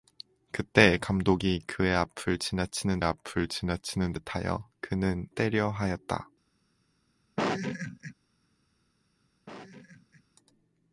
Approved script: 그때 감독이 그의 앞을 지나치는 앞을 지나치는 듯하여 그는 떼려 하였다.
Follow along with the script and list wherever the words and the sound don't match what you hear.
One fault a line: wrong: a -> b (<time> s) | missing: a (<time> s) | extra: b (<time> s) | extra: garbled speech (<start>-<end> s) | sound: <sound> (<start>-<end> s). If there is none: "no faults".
sound: laugh (7.4-8.1 s)
sound: laugh (9.5-10.2 s)